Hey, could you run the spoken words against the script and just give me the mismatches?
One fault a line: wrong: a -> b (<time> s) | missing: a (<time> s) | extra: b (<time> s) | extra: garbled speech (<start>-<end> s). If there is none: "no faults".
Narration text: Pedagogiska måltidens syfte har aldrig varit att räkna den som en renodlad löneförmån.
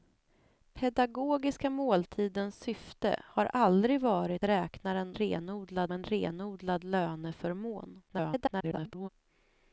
missing: att (4.5 s)
wrong: som -> renodlad (5.1 s)
extra: garbled speech (8.1-9.1 s)